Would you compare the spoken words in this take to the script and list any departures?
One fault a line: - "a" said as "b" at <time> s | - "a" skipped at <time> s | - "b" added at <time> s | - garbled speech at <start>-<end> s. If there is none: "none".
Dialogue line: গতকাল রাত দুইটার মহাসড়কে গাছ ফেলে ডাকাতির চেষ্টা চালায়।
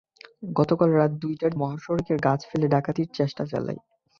none